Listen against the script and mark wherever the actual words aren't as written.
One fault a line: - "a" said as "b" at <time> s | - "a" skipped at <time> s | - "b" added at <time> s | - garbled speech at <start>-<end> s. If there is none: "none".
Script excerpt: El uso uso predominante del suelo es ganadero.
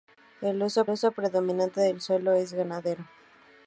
none